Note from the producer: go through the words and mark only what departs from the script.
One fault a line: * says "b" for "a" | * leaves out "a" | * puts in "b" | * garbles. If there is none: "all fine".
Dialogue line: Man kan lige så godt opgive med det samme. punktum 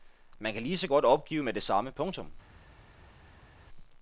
all fine